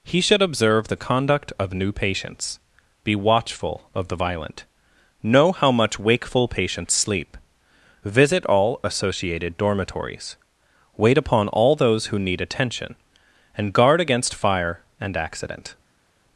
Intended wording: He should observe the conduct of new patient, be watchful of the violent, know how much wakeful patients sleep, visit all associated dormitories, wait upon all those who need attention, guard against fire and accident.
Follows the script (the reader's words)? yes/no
no